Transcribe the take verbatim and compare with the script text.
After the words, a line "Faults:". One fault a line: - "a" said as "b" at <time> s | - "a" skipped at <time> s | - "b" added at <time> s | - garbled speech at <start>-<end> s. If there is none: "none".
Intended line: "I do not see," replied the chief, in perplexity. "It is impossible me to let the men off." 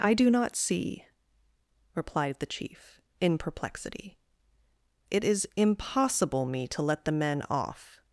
"I do not see," replied the chief, in perplexity. "It is impossible me to let the men off."
Faults:
none